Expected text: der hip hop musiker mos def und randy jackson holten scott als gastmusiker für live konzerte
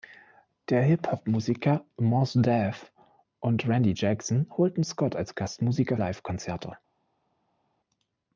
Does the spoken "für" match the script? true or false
false